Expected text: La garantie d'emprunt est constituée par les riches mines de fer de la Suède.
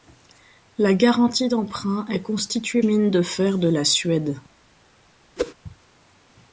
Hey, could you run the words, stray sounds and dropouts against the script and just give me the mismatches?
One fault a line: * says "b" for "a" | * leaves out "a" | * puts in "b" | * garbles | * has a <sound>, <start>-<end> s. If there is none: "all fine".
* leaves out "par les riches"
* has a whoosh, 5.4-5.5 s